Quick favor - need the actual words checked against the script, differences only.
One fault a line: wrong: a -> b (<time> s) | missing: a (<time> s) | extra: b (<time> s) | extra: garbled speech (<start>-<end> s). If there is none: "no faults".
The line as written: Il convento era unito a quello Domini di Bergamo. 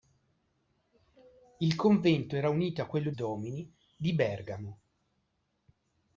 no faults